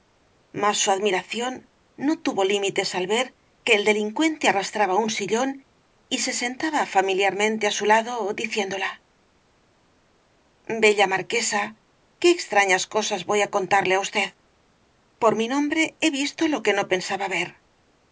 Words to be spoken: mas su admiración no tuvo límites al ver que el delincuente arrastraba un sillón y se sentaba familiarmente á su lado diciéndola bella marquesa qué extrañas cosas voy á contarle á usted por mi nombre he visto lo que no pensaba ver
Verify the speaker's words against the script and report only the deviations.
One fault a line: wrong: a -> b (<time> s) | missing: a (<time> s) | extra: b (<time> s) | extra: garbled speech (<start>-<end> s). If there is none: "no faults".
no faults